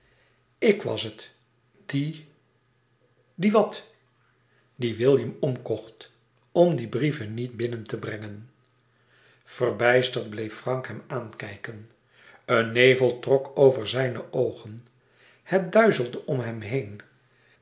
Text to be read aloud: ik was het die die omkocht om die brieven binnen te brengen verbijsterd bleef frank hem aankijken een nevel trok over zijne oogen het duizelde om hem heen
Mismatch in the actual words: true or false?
true